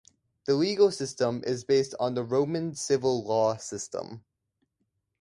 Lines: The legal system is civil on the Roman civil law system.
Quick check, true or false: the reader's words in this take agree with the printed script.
false